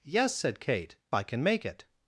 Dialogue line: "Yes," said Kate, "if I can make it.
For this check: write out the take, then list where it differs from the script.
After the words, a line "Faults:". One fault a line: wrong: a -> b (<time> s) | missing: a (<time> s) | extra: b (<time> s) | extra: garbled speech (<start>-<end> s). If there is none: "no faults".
"Yes," said Kate, "I can make it.
Faults:
missing: if (1.0 s)